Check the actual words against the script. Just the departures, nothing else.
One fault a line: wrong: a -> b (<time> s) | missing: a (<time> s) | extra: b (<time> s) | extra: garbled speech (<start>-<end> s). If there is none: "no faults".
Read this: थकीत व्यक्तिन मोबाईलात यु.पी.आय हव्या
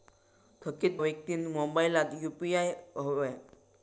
no faults